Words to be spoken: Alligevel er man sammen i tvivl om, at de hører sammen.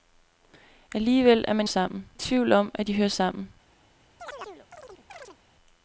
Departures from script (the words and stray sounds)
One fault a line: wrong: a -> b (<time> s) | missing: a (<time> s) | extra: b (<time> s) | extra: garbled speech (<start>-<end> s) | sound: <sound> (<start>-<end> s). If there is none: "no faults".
sound: chirp (4.2-5.4 s)